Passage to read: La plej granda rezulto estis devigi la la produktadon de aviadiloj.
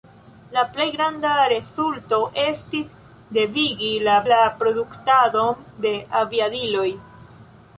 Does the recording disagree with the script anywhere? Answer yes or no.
no